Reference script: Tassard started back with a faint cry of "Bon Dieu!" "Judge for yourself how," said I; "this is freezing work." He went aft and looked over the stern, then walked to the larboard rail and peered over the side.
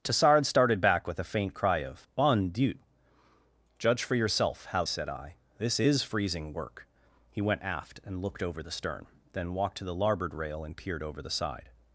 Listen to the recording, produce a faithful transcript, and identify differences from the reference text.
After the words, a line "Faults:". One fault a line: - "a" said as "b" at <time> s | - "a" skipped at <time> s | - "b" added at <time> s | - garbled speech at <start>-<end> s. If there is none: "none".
Tassard started back with a faint cry of "Bon Dieu!" "Judge for yourself how," said I; "this is freezing work." He went aft and looked over the stern, then walked to the larboard rail and peered over the side.
Faults:
none